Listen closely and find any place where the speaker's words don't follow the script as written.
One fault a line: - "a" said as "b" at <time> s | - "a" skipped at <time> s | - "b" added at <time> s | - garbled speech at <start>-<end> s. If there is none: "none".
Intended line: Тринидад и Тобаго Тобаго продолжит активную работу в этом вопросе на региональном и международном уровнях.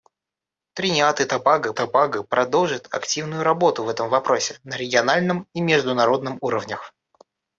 none